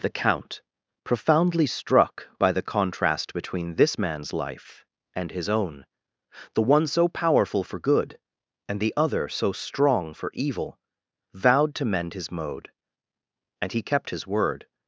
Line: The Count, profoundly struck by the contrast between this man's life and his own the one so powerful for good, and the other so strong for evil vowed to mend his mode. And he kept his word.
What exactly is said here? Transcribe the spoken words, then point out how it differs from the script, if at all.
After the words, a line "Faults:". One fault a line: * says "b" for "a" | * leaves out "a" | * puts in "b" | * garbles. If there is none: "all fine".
The Count, profoundly struck by the contrast between this man's life and his own the one so powerful for good, and the other so strong for evil vowed to mend his mode. And he kept his word.
Faults:
all fine